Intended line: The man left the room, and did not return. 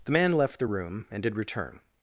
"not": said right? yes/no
no